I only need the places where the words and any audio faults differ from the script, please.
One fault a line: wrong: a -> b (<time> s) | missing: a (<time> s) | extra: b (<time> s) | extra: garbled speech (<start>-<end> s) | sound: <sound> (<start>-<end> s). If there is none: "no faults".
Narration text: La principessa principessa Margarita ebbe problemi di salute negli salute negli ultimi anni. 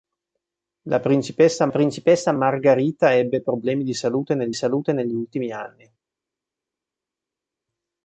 no faults